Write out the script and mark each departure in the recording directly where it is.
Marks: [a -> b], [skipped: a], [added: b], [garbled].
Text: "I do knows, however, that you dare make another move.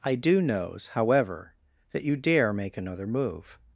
"I do knows, however, that you dare make another move.